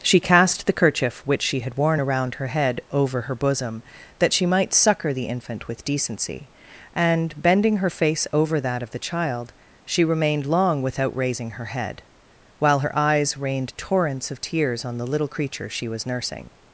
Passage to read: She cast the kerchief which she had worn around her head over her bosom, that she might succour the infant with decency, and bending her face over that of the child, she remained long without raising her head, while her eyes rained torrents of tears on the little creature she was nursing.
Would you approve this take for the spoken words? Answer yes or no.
yes